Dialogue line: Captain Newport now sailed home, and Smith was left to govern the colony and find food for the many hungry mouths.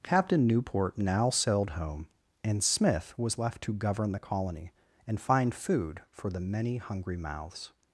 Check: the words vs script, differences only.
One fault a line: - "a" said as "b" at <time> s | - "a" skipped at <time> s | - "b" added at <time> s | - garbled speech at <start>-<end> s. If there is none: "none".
none